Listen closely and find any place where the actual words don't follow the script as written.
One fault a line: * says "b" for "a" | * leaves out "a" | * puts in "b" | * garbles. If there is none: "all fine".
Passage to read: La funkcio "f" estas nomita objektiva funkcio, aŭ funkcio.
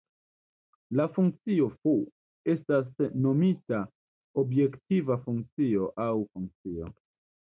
all fine